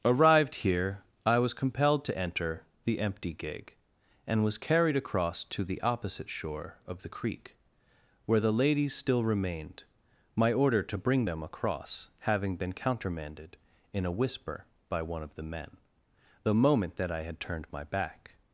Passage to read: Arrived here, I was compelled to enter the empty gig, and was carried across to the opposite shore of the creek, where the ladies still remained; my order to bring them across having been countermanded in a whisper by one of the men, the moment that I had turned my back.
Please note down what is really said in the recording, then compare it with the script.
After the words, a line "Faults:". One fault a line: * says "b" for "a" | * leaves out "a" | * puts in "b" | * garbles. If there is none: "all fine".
Arrived here, I was compelled to enter the empty gig, and was carried across to the opposite shore of the creek, where the ladies still remained; my order to bring them across having been countermanded in a whisper by one of the men, the moment that I had turned my back.
Faults:
all fine